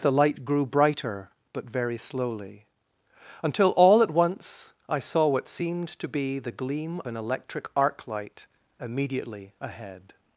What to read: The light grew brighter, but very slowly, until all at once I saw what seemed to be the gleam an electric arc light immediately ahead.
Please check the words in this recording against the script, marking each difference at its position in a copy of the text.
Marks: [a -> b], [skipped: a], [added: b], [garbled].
The light grew brighter, but very slowly, until all at once I saw what seemed to be the gleam an electric arc light immediately ahead.